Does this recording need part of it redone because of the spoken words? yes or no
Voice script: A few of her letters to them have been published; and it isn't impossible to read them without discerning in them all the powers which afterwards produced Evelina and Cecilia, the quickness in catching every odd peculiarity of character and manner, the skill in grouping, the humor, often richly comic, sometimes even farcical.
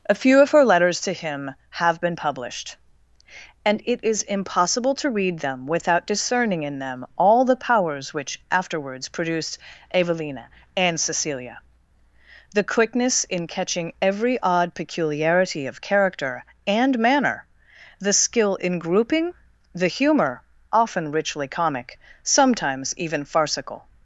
yes